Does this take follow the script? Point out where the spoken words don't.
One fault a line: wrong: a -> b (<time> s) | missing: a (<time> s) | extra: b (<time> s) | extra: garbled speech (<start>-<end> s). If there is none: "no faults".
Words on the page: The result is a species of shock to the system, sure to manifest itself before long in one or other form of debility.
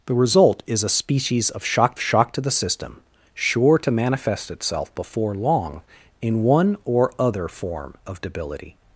extra: shock (2.0 s)